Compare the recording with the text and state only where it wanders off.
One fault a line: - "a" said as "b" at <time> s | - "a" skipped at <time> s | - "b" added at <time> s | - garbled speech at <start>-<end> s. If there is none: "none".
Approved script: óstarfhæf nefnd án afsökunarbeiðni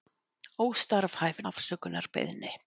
- "nefnd án" skipped at 1.4 s